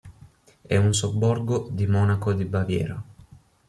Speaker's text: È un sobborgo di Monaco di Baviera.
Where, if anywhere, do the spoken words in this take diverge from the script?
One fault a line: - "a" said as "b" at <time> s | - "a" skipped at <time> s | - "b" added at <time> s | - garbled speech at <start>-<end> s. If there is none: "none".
none